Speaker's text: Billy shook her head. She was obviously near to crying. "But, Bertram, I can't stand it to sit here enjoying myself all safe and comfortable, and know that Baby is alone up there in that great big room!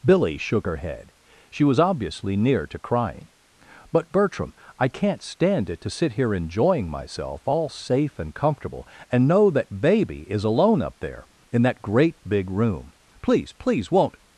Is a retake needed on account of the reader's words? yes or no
yes